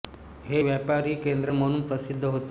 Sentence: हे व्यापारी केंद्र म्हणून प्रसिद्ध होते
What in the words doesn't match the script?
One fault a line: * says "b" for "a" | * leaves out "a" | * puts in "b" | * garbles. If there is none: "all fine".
all fine